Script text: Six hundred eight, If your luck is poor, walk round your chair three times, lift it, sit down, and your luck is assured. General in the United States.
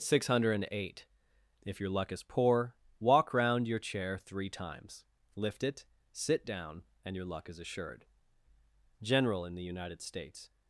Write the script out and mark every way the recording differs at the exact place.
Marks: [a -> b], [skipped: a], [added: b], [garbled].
Six hundred eight, If your luck is poor, walk round your chair three times, lift it, sit down, and your luck is assured. General in the United States.